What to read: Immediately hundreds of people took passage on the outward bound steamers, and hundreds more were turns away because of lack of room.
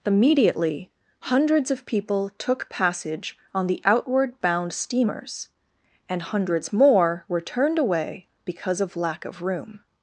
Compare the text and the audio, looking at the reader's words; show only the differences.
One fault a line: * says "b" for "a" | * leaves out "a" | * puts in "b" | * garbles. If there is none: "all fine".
* says "turned" for "turns"